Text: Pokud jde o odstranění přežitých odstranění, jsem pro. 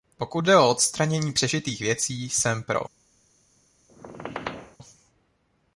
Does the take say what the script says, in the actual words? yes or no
no